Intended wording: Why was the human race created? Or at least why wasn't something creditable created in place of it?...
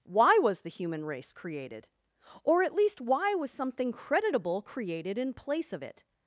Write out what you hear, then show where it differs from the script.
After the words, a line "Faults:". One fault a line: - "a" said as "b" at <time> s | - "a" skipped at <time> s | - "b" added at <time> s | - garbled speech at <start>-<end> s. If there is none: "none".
Why was the human race created? Or at least why was something creditable created in place of it?...
Faults:
- "wasn't" said as "was" at 3.3 s